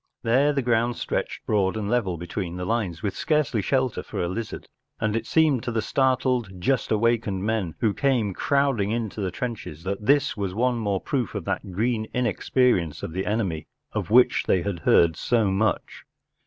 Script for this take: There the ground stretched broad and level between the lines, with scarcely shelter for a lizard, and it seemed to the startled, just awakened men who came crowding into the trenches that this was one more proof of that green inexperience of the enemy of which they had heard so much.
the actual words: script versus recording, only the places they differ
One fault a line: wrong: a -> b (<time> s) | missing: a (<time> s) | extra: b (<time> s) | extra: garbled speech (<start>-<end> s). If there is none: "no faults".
no faults